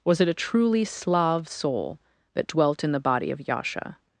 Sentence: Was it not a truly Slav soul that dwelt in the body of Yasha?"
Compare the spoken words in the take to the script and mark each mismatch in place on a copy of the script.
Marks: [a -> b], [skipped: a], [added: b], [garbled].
Was it [skipped: not] a truly Slav soul that dwelt in the body of Yasha?"